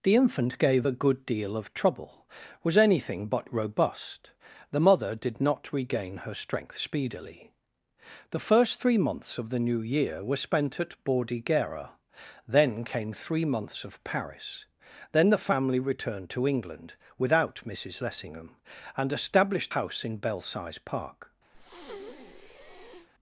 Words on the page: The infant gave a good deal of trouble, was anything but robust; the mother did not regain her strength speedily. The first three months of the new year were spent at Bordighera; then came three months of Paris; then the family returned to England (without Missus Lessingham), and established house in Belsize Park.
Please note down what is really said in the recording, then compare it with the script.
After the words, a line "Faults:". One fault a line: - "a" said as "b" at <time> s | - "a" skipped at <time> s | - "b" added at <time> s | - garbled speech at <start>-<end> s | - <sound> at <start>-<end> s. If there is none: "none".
The infant gave a good deal of trouble, was anything but robust; the mother did not regain her strength speedily. The first three months of the new year were spent at Bordighera; then came three months of Paris; then the family returned to England (without Missus Lessingham), and established house in Belsize Park.
Faults:
- breath at 21.5-23.1 s